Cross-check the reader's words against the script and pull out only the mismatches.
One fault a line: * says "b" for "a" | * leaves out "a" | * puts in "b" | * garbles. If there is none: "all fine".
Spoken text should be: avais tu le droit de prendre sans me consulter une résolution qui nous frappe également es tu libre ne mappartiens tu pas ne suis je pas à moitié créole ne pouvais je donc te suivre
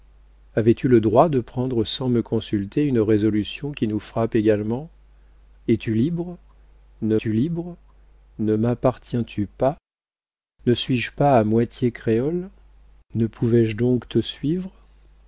* puts in "tu libre ne"